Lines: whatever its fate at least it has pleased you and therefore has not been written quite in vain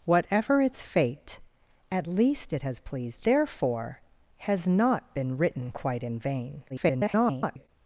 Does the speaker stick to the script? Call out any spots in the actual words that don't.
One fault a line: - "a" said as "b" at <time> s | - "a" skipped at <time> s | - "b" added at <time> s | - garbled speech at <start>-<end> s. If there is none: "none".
- "you and" skipped at 3.3 s
- garbled speech at 6.7-7.7 s